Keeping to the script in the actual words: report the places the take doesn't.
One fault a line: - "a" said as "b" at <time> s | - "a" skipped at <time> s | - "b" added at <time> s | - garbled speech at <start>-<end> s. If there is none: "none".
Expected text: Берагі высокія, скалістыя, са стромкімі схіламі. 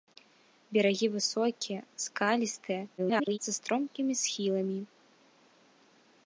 - garbled speech at 3.0-3.4 s